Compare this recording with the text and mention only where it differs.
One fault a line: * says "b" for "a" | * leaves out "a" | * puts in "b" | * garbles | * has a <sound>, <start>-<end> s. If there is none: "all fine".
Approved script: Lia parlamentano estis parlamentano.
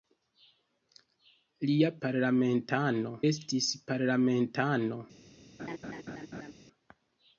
* has a laugh, 5.6-6.5 s